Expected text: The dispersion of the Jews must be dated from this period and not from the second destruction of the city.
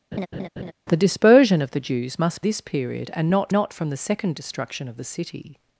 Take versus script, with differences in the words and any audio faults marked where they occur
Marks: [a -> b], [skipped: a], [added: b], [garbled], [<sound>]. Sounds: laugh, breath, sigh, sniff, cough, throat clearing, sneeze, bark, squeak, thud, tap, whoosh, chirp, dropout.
[laugh] The dispersion of the Jews must [skipped: be dated from] this period and not [added: not] from the second destruction of the city.